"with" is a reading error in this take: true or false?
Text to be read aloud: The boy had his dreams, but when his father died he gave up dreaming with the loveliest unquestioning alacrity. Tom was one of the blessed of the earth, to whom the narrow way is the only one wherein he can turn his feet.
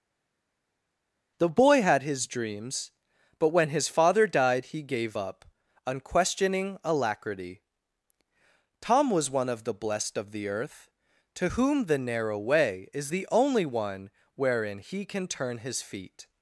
true